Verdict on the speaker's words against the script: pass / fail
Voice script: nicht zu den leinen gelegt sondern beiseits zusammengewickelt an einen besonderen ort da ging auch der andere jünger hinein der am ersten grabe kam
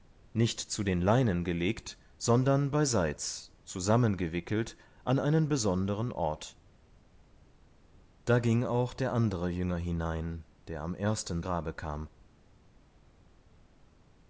pass